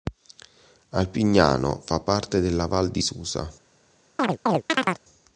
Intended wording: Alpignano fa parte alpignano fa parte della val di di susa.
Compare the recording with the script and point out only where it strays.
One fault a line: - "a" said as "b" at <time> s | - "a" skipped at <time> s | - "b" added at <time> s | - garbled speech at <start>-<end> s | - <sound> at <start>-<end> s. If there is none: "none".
- "alpignano fa parte" skipped at 2.4 s
- "di" skipped at 3.0 s
- chirp at 4.2-5.0 s